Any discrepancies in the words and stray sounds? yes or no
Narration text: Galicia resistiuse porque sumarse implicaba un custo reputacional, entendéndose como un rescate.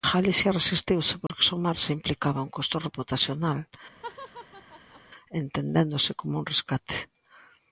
yes